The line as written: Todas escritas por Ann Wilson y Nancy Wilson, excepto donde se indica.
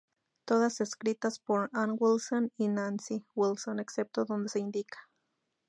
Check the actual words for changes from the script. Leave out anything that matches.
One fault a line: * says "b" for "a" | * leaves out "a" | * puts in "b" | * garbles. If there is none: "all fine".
all fine